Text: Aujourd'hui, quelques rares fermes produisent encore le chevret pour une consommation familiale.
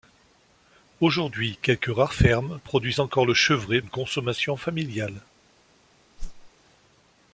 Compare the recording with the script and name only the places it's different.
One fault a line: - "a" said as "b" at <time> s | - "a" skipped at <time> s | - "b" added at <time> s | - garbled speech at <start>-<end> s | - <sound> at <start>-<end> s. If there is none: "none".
- "pour" skipped at 3.8 s
- whoosh at 6.2-6.5 s